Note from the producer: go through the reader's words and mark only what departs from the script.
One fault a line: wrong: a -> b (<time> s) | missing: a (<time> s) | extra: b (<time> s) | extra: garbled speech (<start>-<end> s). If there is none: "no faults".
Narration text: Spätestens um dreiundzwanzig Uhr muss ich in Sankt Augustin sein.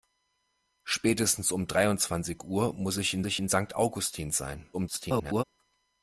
extra: ich in (3.2 s)
extra: garbled speech (4.7-5.4 s)